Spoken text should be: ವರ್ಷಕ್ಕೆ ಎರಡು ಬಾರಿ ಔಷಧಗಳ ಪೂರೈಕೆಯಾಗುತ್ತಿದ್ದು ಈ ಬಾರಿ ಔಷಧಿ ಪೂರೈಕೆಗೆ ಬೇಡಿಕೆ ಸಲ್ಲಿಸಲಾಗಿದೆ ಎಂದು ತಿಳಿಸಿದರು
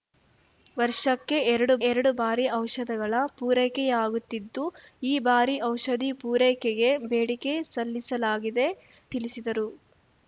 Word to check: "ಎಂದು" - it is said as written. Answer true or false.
false